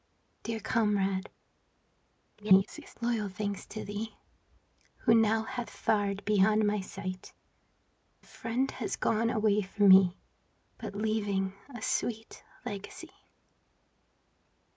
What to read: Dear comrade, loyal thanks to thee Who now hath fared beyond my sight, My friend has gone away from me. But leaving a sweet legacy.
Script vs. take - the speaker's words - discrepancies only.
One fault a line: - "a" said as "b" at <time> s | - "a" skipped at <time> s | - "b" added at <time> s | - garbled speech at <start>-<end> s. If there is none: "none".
- garbled speech at 2.4-2.9 s
- "My" skipped at 7.3 s